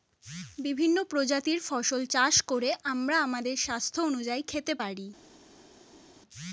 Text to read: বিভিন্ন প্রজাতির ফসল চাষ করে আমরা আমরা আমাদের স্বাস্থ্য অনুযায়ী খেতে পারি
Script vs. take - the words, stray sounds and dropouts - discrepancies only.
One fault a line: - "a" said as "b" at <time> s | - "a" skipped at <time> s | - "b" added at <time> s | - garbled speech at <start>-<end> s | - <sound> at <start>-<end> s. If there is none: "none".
- "আমরা" skipped at 3.1 s